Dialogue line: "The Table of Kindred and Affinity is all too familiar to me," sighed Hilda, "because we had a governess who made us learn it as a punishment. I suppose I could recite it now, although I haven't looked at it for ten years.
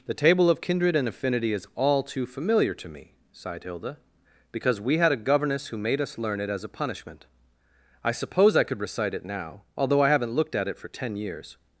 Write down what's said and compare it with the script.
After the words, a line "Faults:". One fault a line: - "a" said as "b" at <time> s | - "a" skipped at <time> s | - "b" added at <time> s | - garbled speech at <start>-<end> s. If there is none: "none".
"The Table of Kindred and Affinity is all too familiar to me," sighed Hilda, "because we had a governess who made us learn it as a punishment. I suppose I could recite it now, although I haven't looked at it for ten years.
Faults:
none